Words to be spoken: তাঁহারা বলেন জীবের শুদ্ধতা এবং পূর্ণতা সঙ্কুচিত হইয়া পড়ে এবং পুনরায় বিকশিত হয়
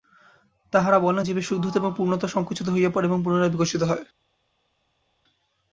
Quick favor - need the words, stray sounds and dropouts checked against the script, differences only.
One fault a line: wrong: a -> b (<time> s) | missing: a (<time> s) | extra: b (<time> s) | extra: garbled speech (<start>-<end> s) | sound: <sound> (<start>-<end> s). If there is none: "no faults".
no faults